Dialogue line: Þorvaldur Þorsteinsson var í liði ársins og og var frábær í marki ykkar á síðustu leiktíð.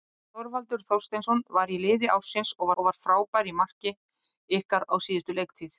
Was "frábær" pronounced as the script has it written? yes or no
yes